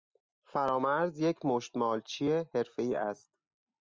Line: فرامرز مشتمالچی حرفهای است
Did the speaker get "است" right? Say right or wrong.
right